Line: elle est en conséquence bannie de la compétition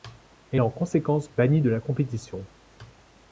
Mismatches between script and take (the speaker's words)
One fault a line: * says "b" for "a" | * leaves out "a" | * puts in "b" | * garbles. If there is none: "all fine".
all fine